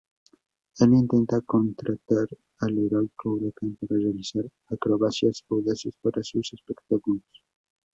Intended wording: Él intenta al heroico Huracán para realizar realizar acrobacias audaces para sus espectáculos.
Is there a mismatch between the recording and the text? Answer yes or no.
yes